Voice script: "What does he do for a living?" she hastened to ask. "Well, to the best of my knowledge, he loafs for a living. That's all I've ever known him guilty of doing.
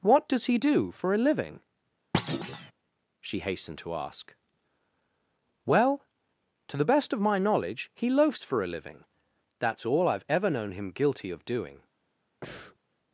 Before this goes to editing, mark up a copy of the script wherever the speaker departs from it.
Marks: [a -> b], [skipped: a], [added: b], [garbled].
"What does he do for a living?" she hastened to ask. "Well, to the best of my knowledge, he loafs for a living. That's all I've ever known him guilty of doing.